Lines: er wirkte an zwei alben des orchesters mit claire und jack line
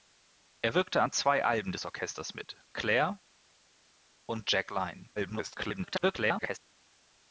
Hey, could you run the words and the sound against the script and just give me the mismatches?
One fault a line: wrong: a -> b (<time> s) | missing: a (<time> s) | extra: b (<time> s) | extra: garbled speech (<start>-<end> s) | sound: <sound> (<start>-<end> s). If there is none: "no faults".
extra: garbled speech (5.2-6.6 s)